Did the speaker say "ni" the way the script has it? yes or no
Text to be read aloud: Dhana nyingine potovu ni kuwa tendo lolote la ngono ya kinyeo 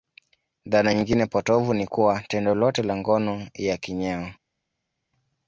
yes